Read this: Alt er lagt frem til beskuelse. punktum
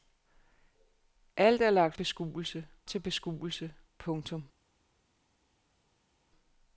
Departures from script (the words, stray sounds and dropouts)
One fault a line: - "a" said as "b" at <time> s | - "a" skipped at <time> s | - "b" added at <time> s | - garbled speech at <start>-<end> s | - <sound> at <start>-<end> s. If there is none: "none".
- "frem" said as "beskuelse" at 1.9 s